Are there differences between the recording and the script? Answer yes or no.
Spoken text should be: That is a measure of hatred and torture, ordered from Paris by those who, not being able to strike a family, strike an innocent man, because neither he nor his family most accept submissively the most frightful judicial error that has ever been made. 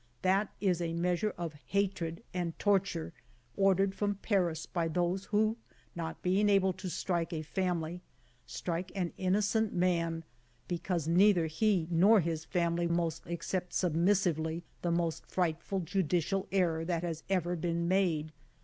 no